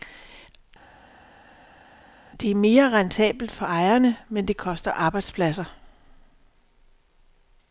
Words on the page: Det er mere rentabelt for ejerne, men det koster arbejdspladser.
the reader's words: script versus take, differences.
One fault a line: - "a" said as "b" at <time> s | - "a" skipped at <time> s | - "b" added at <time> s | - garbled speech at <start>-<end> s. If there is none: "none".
none